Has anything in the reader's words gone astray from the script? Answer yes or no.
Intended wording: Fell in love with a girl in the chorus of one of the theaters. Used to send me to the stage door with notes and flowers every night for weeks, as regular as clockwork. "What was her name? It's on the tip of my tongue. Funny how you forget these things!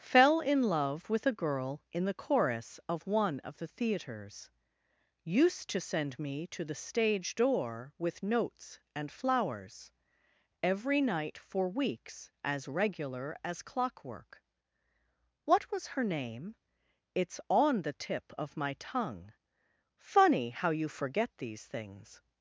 no